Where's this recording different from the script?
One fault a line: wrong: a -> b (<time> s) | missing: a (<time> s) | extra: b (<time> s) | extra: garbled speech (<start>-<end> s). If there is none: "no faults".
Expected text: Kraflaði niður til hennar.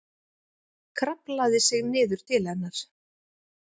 extra: sig (1.7 s)